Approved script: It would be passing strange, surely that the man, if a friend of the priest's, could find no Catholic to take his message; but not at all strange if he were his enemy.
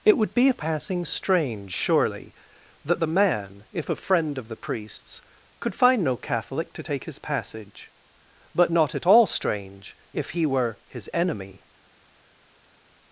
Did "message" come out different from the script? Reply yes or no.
yes